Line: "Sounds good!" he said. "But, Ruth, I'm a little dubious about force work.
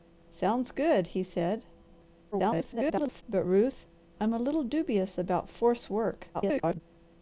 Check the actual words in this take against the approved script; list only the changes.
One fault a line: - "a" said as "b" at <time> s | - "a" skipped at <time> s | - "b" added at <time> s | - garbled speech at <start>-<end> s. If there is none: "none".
- garbled speech at 2.3-3.2 s
- garbled speech at 6.3-6.8 s